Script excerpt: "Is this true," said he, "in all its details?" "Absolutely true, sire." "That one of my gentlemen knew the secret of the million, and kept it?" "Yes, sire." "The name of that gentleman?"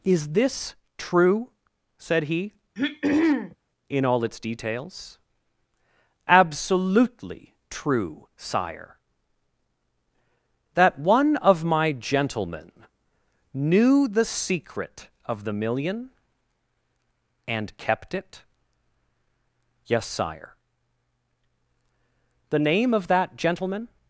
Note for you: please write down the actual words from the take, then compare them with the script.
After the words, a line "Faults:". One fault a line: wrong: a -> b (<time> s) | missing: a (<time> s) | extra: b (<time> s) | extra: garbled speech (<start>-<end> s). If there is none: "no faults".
"Is this true," said he, "in all its details?" "Absolutely true, sire." "That one of my gentlemen knew the secret of the million, and kept it?" "Yes, sire." "The name of that gentleman?"
Faults:
no faults